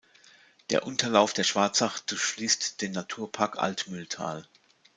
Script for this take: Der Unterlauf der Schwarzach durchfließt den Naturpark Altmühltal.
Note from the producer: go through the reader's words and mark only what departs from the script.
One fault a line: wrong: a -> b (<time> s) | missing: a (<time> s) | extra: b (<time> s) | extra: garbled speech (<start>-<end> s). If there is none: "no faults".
no faults